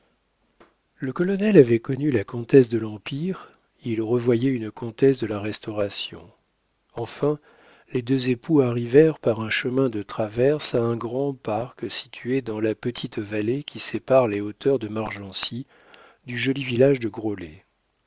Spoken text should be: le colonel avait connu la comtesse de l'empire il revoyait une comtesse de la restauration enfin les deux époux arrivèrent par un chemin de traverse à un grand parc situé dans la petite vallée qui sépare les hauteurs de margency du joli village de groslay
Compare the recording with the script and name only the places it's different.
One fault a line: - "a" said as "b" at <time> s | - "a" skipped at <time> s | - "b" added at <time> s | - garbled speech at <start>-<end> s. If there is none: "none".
none